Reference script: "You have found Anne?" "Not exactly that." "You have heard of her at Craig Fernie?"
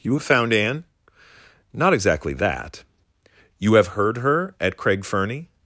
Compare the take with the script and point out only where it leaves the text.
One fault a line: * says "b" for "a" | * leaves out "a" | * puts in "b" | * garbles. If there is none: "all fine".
* leaves out "of"